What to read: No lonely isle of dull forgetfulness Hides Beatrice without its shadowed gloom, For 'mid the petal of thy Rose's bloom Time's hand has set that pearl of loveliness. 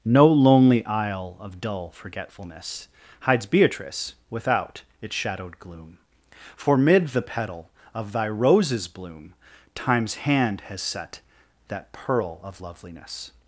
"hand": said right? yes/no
yes